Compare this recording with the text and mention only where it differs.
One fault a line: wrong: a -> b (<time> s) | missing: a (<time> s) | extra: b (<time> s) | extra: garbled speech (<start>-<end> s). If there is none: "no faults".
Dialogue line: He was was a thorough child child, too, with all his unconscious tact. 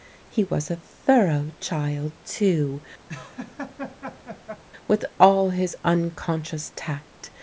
missing: was (0.7 s)
missing: child (2.1 s)